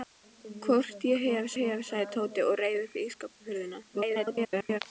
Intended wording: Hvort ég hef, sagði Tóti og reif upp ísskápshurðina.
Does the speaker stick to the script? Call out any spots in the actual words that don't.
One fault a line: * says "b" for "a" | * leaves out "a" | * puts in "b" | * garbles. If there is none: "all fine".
* puts in "hef"
* garbles